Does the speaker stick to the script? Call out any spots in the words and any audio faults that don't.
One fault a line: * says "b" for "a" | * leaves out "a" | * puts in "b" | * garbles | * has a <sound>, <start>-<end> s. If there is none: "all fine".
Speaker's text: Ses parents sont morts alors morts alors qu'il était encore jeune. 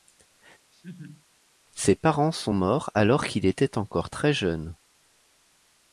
* has a laugh, 0.7-1.3 s
* leaves out "morts alors"
* puts in "très"